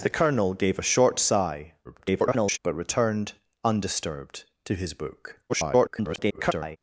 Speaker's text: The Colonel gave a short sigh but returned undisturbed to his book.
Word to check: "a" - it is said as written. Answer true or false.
true